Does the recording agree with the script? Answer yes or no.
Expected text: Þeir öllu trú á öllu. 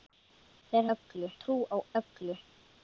yes